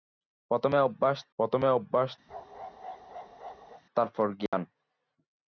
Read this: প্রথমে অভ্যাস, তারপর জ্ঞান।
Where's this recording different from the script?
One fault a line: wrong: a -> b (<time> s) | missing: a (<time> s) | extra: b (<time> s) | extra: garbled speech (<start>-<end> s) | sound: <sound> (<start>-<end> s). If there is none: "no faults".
extra: প্রথমে অভ্যাস (1.4 s)
sound: bark (2.3-3.8 s)
sound: dropout (4.5-4.5 s)